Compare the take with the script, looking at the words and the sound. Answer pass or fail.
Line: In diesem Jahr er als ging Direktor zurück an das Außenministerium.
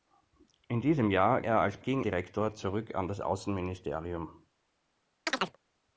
fail